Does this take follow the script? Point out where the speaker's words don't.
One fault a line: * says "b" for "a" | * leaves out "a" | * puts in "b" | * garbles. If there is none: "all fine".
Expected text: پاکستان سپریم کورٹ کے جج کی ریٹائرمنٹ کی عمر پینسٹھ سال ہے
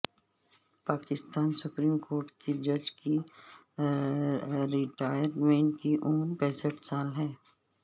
all fine